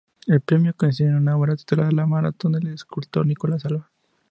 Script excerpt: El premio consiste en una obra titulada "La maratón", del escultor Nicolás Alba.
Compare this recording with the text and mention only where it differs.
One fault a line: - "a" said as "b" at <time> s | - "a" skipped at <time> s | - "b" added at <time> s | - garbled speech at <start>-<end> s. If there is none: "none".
none